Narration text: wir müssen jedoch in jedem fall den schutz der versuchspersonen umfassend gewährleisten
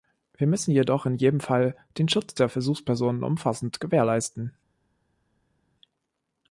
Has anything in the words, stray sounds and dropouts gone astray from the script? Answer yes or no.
no